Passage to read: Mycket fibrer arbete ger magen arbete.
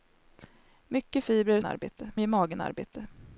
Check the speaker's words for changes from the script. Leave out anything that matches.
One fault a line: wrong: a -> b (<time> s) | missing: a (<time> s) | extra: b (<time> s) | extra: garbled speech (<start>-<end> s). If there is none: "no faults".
no faults